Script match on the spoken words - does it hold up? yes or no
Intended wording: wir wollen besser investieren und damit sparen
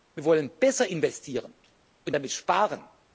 yes